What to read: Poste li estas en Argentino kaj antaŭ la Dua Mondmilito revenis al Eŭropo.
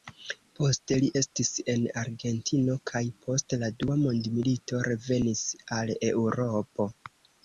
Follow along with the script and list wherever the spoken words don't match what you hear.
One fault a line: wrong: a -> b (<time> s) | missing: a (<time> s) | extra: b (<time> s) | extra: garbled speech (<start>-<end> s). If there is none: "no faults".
wrong: estas -> estis (1.2 s)
wrong: antaŭ -> post (3.2 s)